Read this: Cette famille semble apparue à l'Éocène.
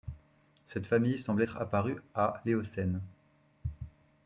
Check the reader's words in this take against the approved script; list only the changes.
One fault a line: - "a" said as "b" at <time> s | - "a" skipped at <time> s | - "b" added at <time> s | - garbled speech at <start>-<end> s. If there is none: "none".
- "être" added at 1.4 s